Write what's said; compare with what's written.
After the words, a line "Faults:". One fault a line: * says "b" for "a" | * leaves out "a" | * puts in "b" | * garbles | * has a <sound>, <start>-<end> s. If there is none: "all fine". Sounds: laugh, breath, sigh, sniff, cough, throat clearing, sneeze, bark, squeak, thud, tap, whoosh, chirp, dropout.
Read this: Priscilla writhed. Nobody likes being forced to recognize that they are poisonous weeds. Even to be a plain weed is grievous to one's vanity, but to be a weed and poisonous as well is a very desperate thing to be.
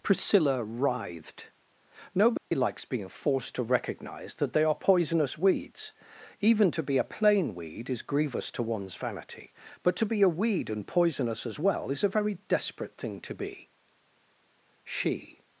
Priscilla writhed. Nobody likes being forced to recognize that they are poisonous weeds. Even to be a plain weed is grievous to one's vanity, but to be a weed and poisonous as well is a very desperate thing to be. She
Faults:
* has a dropout, 2.4-2.5 s
* puts in "She"